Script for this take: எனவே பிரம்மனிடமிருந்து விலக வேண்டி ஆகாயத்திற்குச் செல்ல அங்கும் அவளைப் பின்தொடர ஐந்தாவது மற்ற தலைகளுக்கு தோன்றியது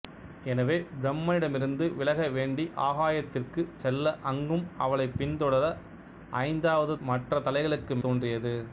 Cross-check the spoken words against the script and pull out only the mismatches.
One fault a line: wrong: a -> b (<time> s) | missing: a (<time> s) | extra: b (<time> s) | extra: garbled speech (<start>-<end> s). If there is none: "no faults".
no faults